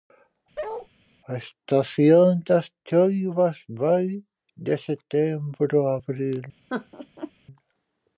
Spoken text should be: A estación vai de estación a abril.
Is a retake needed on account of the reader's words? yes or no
yes